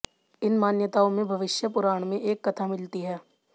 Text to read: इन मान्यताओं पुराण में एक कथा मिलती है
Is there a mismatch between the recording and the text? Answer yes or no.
yes